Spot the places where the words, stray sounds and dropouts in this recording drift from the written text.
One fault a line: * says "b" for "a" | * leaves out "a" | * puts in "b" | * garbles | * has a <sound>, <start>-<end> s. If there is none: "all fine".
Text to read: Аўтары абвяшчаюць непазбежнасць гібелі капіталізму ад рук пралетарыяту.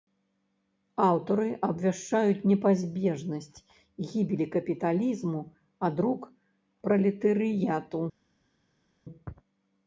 all fine